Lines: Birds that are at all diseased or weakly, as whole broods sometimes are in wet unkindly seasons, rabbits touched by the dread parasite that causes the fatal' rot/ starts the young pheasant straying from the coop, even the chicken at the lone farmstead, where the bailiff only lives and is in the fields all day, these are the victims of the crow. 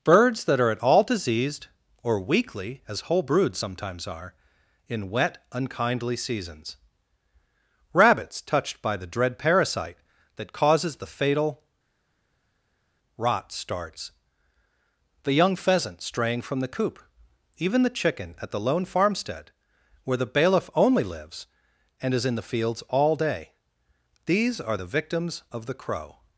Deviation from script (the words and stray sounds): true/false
false